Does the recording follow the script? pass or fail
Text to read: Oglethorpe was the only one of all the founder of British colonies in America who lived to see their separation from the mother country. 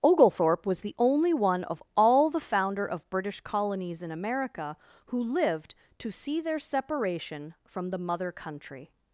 pass